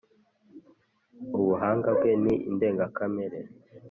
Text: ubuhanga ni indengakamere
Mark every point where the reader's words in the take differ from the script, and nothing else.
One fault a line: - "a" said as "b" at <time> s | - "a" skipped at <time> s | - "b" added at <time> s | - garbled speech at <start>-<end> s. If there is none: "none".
- "bwe" added at 2.0 s